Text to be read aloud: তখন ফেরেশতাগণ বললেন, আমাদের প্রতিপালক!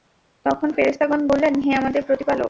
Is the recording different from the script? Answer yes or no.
yes